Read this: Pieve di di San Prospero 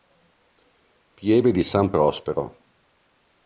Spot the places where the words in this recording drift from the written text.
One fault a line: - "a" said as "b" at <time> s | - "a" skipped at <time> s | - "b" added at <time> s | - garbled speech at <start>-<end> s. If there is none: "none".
- "di" skipped at 1.6 s